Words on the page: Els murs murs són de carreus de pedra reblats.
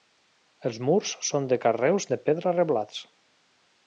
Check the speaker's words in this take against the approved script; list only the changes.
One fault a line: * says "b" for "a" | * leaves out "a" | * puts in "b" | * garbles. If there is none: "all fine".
* leaves out "murs"